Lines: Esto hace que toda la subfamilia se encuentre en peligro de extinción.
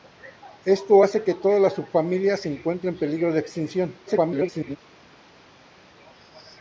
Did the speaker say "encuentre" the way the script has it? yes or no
yes